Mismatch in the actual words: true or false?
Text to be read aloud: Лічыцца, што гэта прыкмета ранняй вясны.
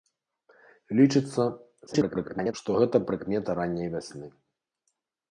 true